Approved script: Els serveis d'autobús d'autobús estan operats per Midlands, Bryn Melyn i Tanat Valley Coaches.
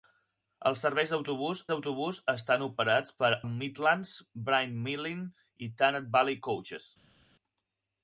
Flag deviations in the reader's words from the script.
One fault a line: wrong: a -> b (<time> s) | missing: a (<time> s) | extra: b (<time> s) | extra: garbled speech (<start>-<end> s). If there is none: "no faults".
no faults